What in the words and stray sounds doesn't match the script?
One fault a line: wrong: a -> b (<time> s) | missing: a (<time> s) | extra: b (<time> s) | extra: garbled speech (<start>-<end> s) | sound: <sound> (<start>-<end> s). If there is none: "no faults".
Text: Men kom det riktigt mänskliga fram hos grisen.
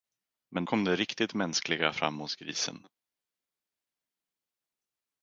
no faults